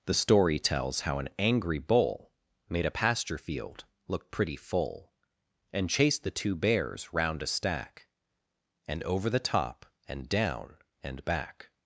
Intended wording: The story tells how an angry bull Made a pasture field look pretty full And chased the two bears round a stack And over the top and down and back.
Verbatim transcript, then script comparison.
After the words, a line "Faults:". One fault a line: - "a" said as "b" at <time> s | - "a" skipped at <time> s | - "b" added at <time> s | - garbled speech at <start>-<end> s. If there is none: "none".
The story tells how an angry bull Made a pasture field look pretty full And chased the two bears round a stack And over the top and down and back.
Faults:
none